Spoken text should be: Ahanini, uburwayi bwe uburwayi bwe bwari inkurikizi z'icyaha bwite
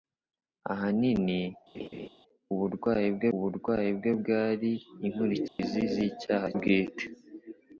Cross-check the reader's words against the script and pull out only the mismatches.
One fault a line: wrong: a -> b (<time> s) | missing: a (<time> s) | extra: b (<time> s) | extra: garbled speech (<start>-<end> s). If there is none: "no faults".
no faults